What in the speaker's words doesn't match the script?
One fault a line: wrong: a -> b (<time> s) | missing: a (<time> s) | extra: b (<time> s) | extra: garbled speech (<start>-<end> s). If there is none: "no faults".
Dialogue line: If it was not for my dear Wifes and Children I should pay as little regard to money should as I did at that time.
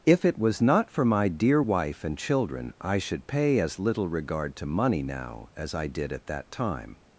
wrong: Wifes -> Wife (1.6 s)
wrong: should -> now (5.0 s)